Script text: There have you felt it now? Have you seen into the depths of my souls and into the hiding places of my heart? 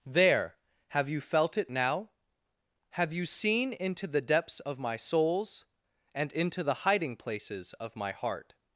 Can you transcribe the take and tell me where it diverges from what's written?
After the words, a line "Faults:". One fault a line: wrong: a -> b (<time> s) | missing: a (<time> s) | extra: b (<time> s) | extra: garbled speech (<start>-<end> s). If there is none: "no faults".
There have you felt it now? Have you seen into the depths of my souls and into the hiding places of my heart?
Faults:
no faults